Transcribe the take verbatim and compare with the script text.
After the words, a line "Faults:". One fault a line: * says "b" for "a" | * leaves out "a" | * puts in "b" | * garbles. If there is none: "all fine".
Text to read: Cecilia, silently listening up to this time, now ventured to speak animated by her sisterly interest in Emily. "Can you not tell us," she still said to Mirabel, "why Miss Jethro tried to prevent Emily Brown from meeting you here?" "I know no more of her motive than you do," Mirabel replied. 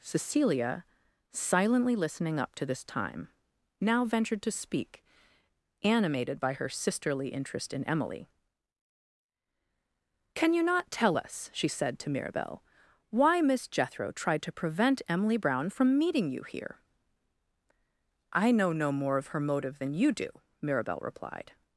Cecilia, silently listening up to this time, now ventured to speak animated by her sisterly interest in Emily. "Can you not tell us," she said to Mirabel, "why Miss Jethro tried to prevent Emily Brown from meeting you here?" "I know no more of her motive than you do," Mirabel replied.
Faults:
* leaves out "still"